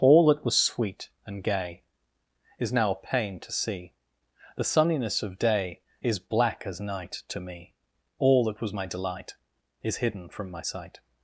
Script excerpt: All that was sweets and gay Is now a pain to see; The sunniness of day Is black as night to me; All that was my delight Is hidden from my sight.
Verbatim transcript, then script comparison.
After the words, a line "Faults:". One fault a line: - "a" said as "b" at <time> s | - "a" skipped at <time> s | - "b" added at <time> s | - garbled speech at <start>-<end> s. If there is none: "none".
All that was sweet and gay Is now a pain to see; The sunniness of day Is black as night to me; All that was my delight Is hidden from my sight.
Faults:
- "sweets" said as "sweet" at 0.6 s